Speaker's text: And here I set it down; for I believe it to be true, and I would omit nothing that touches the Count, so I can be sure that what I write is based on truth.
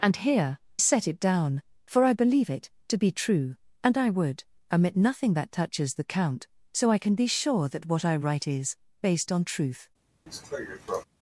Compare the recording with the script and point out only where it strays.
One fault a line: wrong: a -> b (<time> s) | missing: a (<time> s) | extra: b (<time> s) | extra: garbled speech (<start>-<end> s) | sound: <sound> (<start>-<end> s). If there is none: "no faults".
missing: I (0.6 s)
sound: cough (10.3-11.0 s)